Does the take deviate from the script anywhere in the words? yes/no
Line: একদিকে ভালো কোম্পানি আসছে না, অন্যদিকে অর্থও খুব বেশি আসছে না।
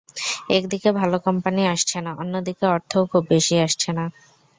no